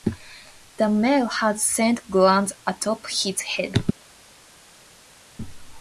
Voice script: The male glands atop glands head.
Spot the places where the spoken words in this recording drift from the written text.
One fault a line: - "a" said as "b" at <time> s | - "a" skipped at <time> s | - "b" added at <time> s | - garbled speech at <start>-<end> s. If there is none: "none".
- "has scent" added at 1.3 s
- "glands" said as "his" at 3.1 s